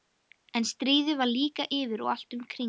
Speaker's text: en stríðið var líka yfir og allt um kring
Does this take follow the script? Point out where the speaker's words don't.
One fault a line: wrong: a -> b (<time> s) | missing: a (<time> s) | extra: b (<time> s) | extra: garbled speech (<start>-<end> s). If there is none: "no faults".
no faults